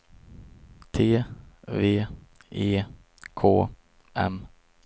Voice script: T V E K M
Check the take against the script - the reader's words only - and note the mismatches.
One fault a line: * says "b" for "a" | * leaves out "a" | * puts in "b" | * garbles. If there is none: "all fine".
all fine